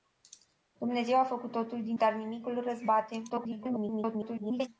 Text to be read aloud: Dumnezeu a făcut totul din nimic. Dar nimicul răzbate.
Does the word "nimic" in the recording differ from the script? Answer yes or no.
yes